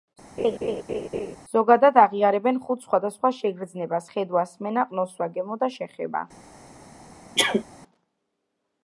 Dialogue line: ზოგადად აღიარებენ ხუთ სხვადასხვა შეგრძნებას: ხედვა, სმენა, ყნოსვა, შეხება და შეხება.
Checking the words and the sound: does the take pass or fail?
fail